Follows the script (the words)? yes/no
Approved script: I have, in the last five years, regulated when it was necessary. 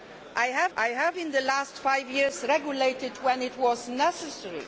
no